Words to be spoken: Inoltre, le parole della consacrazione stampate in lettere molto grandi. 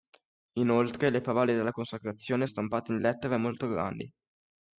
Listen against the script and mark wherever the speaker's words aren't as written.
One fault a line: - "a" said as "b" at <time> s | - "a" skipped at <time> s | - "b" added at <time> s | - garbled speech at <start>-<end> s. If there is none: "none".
none